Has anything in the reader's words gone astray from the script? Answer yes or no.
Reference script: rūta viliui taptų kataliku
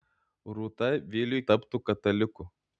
no